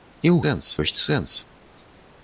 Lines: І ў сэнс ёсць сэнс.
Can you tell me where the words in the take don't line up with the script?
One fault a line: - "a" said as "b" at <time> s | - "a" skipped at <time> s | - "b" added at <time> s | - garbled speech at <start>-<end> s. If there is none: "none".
none